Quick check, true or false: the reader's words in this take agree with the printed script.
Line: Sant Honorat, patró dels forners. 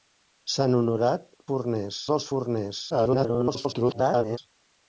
false